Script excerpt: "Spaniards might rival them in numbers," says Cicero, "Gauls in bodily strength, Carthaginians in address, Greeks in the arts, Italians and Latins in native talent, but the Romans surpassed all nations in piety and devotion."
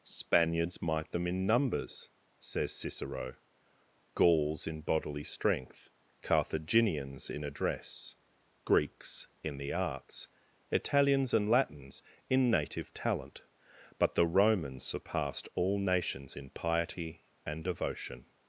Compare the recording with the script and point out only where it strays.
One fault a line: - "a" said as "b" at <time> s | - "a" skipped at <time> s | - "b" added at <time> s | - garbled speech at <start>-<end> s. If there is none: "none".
- "rival" skipped at 1.1 s